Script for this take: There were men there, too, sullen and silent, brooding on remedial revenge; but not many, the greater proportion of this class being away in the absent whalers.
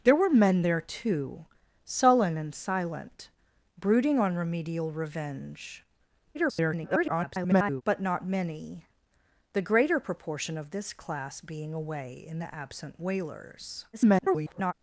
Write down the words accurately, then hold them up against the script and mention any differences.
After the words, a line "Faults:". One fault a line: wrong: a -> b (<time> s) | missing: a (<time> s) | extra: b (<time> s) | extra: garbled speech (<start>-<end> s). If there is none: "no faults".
There were men there, too, sullen and silent, brooding on remedial revenge; [garbled] but not many, the greater proportion of this class being away in the absent whalers. [garbled]
Faults:
extra: garbled speech (6.3-7.8 s)
extra: garbled speech (13.9-14.7 s)